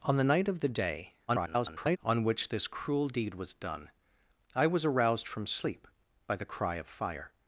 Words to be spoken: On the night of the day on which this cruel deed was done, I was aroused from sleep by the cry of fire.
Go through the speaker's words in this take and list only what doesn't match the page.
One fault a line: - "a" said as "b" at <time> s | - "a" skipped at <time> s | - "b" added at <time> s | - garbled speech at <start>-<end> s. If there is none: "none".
- garbled speech at 1.3-2.0 s